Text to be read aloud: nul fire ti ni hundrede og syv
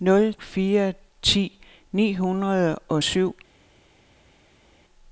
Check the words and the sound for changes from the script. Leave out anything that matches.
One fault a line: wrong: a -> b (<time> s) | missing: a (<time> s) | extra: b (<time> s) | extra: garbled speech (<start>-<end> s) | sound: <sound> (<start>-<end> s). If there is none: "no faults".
no faults